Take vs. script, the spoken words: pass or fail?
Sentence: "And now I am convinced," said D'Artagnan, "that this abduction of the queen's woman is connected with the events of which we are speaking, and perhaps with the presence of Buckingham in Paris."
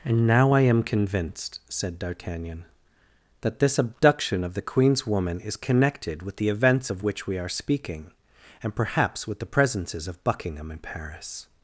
fail